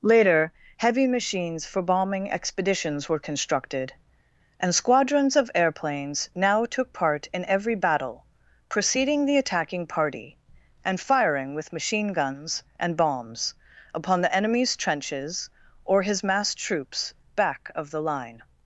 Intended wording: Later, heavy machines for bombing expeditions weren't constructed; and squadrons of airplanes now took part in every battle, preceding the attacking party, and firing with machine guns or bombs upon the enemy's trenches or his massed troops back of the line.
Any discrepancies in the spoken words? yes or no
yes